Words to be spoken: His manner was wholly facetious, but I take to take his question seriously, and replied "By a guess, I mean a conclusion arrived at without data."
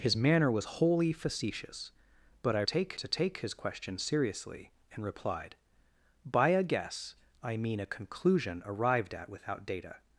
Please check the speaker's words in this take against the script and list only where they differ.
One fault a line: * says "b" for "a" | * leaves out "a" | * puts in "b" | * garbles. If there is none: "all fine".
all fine